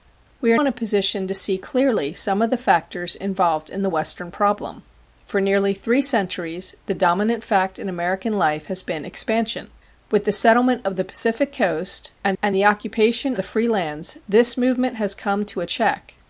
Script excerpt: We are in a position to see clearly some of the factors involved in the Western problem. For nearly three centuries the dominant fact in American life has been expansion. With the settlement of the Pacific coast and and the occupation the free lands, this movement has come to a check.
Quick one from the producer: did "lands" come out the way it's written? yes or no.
yes